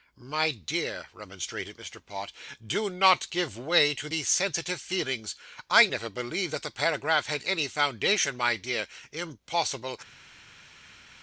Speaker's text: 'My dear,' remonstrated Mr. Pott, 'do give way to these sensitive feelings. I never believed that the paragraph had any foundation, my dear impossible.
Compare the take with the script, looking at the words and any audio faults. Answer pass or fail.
fail